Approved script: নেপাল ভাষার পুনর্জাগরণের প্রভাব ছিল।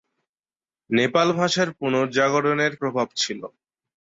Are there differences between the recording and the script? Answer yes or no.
no